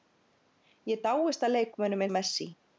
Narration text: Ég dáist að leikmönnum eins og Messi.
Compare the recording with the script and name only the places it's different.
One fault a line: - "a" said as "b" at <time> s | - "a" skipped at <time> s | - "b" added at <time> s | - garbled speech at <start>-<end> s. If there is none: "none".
- "eins" skipped at 2.1 s